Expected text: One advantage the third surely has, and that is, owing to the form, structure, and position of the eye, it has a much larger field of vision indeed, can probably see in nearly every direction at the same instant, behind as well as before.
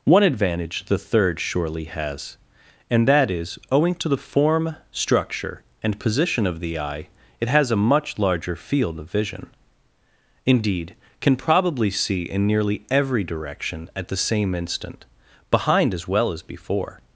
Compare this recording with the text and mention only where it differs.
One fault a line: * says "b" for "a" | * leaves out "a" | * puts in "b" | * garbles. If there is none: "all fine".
all fine